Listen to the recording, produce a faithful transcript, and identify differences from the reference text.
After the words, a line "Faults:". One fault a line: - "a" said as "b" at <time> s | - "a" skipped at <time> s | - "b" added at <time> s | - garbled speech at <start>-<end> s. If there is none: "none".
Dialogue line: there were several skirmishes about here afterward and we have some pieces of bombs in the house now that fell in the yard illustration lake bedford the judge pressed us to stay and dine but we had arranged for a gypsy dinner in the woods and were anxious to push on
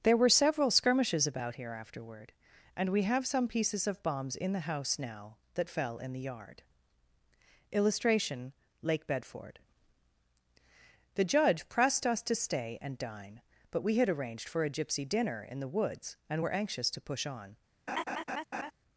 there were several skirmishes about here afterward and we have some pieces of bombs in the house now that fell in the yard illustration lake bedford the judge pressed us to stay and dine but we had arranged for a gypsy dinner in the woods and were anxious to push on
Faults:
none